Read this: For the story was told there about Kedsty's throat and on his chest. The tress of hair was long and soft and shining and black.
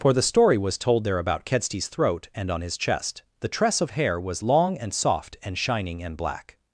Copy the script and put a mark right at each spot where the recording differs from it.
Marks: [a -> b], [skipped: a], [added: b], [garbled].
For the story was told there about Kedsty's throat and on his chest. The tress of hair was long and soft and shining and black.